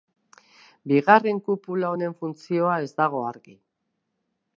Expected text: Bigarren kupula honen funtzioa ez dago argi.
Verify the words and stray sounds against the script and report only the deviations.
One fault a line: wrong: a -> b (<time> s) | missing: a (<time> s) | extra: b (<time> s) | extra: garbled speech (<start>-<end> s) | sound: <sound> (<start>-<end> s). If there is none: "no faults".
no faults